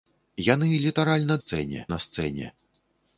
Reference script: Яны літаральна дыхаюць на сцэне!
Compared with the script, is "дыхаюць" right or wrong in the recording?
wrong